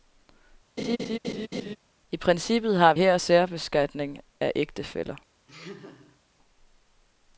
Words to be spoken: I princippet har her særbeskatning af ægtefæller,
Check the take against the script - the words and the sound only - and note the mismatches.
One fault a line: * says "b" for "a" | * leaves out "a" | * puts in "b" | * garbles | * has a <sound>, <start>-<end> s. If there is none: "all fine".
* has a laugh, 0.8-1.8 s
* has a laugh, 5.5-6.2 s